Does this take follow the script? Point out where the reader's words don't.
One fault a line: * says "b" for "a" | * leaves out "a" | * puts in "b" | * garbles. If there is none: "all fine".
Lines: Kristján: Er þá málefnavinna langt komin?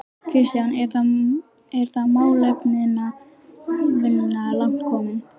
all fine